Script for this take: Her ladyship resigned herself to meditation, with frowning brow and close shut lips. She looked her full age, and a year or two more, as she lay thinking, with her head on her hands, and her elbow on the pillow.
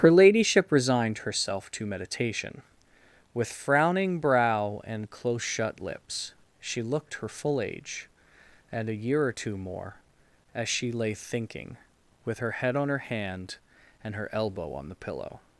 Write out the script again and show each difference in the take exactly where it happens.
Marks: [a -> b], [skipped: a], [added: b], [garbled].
Her ladyship resigned herself to meditation, with frowning brow and close shut lips. She looked her full age, and a year or two more, as she lay thinking, with her head on her [hands, -> hand] and her elbow on the pillow.